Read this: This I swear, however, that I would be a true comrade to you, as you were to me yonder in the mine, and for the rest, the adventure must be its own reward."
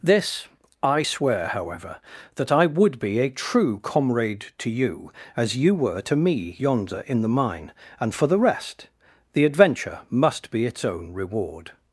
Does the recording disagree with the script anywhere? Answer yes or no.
no